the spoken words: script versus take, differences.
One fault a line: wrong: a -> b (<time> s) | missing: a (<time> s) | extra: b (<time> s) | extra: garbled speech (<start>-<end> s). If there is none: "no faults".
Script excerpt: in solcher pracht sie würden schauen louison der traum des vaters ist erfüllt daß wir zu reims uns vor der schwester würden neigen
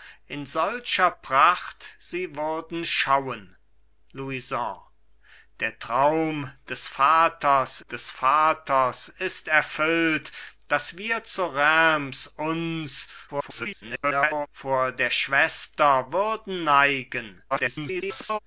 extra: des vaters (7.9 s)
extra: garbled speech (13.3-14.5 s)
extra: garbled speech (17.5-18.4 s)